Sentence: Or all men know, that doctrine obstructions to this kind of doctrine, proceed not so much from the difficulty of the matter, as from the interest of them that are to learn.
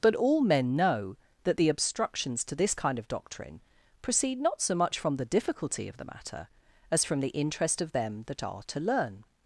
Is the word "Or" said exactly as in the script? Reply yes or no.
no